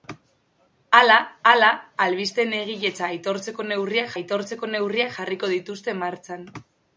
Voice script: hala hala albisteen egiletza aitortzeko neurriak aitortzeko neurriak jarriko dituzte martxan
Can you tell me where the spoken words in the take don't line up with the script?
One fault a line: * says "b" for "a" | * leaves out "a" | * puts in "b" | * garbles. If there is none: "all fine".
all fine